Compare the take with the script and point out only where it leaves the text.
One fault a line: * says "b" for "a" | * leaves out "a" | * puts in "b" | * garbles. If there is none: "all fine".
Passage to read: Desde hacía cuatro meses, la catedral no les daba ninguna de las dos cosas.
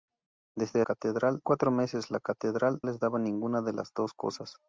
* says "catedral" for "hacía"
* leaves out "no"